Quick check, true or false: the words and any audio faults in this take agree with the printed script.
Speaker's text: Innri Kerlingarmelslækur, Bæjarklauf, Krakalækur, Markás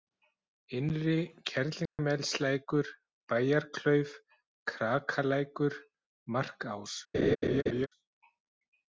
false